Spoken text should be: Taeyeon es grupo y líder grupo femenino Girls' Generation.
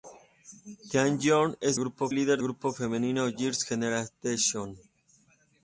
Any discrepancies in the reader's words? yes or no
no